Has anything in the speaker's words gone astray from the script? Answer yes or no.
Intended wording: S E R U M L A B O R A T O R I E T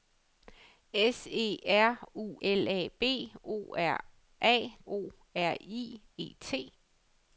yes